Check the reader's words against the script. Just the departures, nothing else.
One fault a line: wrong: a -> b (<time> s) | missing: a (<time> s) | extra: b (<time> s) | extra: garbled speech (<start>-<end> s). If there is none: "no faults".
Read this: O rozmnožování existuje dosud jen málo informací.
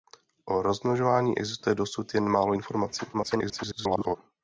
extra: garbled speech (3.1-4.2 s)